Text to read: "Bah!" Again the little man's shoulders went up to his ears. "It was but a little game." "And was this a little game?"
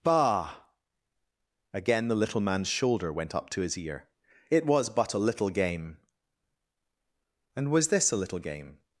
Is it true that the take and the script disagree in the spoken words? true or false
true